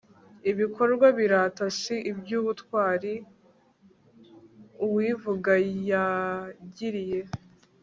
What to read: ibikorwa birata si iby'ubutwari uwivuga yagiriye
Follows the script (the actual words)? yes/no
yes